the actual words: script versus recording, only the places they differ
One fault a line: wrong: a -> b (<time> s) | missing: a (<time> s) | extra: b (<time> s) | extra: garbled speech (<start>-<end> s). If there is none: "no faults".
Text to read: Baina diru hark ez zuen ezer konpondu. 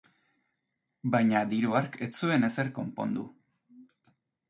no faults